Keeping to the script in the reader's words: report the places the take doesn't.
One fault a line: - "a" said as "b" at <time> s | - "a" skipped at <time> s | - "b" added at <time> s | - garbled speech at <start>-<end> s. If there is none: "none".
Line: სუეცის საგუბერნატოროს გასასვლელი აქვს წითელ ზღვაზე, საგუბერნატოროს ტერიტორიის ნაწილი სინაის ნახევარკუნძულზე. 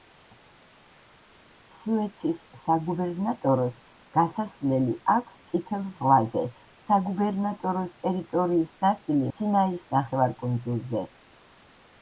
none